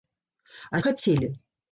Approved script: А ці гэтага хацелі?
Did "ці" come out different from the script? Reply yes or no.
yes